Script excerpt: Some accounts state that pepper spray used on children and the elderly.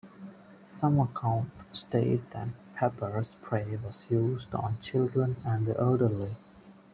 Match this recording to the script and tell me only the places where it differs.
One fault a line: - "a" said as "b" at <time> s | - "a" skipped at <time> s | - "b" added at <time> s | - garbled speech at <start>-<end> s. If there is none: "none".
- "was" added at 3.8 s